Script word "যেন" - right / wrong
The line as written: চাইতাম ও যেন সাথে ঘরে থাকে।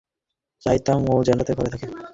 right